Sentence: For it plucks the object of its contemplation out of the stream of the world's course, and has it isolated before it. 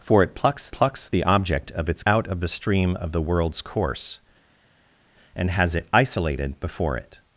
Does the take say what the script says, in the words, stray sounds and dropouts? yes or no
no